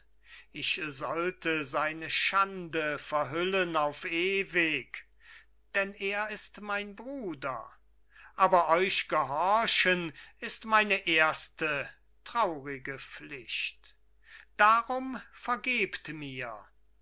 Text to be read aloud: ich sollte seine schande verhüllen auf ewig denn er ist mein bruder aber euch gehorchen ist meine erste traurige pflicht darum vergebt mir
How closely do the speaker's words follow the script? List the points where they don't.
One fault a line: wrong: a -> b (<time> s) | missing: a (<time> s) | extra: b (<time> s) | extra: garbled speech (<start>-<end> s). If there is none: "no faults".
no faults